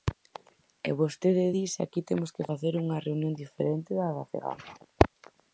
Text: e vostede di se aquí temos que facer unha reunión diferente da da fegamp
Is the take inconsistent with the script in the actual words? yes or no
no